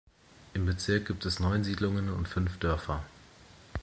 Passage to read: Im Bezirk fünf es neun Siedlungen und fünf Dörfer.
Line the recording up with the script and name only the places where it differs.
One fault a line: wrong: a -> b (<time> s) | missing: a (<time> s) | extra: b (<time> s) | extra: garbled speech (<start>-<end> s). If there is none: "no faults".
wrong: fünf -> gibt (1.1 s)